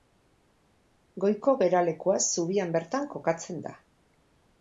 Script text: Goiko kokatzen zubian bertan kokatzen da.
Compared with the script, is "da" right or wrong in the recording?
right